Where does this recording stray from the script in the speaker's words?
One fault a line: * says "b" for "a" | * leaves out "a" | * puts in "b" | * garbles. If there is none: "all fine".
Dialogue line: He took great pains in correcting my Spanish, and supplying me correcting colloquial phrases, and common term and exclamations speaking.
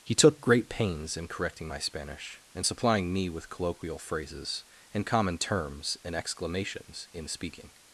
* says "with" for "correcting"
* says "terms" for "term"
* puts in "in"